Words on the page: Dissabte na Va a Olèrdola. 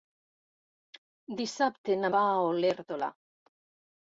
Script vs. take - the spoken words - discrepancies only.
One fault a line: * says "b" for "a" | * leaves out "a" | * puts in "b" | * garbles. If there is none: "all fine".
all fine